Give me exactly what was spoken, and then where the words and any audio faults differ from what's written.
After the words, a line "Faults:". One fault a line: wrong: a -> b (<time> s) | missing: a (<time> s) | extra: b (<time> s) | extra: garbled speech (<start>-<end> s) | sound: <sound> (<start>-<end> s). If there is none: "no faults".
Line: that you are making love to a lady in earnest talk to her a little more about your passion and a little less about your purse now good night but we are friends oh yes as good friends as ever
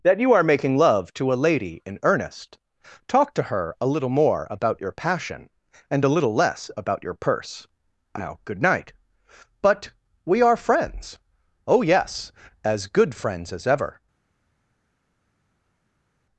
that you are making love to a lady in earnest talk to her a little more about your passion and a little less about your purse now good night but we are friends oh yes as good friends as ever
Faults:
no faults